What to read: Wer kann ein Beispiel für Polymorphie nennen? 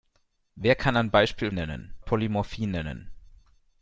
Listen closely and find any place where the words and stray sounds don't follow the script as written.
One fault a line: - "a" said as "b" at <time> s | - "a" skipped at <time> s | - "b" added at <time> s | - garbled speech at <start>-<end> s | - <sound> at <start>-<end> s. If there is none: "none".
- "für" said as "nennen" at 1.5 s